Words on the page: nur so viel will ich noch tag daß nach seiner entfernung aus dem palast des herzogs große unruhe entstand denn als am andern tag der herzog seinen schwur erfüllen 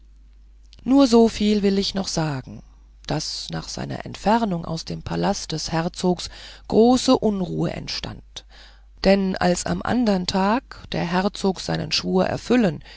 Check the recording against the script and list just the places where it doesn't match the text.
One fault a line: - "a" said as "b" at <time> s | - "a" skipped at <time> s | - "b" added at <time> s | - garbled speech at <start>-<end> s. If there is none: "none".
- "tag" said as "sagen" at 2.1 s